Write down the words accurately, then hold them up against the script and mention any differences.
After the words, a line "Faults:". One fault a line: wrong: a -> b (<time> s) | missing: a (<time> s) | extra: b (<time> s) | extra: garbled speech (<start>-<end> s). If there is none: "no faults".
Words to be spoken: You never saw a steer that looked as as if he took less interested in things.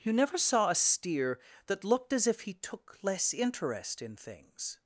You never saw a steer that looked as if he took less interest in things.
Faults:
missing: as (2.2 s)
wrong: interested -> interest (3.3 s)